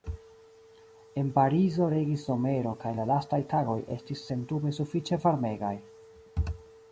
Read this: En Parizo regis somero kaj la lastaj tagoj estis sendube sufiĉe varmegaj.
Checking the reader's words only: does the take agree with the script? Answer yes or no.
yes